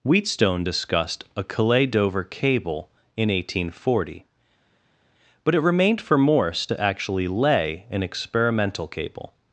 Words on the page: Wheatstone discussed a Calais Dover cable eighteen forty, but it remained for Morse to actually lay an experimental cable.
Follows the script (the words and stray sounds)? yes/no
no